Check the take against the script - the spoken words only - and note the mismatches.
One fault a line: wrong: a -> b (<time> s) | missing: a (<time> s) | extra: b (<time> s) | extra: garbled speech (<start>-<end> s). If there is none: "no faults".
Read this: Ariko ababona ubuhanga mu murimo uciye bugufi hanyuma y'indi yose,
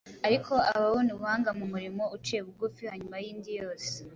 no faults